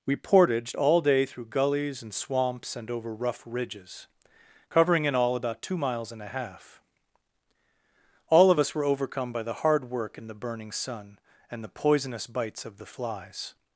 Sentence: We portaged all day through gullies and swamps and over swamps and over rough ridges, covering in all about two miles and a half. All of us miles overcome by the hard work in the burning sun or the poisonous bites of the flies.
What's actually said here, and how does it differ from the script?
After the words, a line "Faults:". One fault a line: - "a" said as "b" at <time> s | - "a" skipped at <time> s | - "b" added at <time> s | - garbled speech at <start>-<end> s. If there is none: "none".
We portaged all day through gullies and swamps and over rough ridges, covering in all about two miles and a half. All of us were overcome by the hard work in the burning sun and the poisonous bites of the flies.
Faults:
- "swamps and over" skipped at 3.1 s
- "miles" said as "were" at 8.7 s
- "or" said as "and" at 11.5 s